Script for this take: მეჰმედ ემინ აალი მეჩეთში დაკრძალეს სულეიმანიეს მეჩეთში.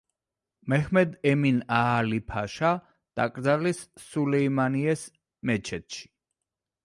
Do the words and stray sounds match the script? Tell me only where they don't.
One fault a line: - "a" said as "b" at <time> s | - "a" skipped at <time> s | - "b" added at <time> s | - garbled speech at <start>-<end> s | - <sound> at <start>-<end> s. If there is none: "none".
- "მეჩეთში" said as "ფაშა" at 2.3 s